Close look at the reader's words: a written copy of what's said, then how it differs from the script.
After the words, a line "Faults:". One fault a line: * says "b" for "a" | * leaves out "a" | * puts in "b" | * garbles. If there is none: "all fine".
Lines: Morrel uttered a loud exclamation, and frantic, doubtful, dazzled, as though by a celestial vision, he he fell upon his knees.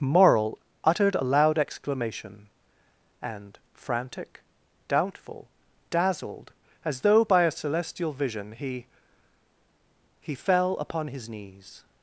Morrel uttered a loud exclamation, and frantic, doubtful, dazzled, as though by a celestial vision, he he fell upon his knees.
Faults:
all fine